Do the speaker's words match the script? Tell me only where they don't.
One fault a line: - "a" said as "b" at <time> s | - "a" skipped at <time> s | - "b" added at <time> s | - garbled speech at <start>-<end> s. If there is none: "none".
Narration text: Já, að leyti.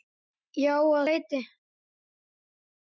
none